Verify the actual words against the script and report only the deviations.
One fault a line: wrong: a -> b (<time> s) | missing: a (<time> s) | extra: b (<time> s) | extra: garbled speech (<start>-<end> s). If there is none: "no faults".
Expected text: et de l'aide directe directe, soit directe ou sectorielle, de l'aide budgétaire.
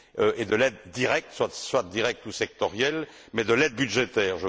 missing: directe (1.3 s)
extra: mais (3.3 s)